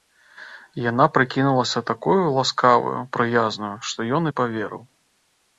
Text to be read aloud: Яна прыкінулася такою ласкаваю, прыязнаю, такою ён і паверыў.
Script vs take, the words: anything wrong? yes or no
yes